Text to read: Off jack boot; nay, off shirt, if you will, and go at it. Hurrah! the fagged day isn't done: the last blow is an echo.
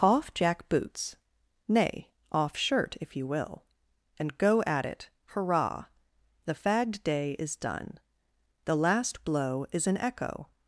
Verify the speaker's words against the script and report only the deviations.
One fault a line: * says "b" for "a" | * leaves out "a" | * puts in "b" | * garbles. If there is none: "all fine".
* says "boots" for "boot"
* says "is" for "isn't"